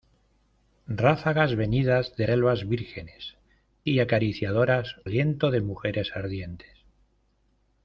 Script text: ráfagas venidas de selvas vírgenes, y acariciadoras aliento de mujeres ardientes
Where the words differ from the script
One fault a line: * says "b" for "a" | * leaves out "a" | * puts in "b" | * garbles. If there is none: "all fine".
all fine